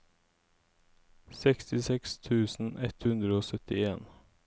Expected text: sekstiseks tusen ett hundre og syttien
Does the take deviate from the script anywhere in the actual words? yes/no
no